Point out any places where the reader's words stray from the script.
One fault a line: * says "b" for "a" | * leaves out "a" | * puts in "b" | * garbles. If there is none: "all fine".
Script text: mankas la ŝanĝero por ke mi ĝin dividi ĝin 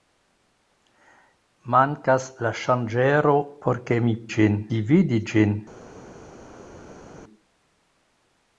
all fine